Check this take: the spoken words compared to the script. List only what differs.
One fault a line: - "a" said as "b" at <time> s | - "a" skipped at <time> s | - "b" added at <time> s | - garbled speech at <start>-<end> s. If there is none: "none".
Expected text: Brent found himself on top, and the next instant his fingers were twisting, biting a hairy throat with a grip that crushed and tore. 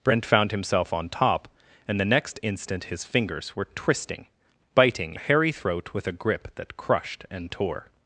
none